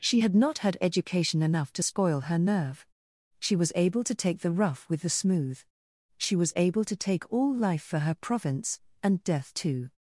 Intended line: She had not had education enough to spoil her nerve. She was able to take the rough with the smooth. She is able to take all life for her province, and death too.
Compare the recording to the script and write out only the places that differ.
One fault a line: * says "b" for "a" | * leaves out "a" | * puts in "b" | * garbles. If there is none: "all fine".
* says "was" for "is"